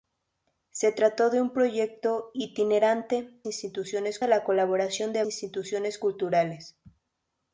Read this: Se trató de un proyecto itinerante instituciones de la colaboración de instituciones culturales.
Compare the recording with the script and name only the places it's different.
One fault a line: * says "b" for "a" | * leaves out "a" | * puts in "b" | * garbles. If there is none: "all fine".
all fine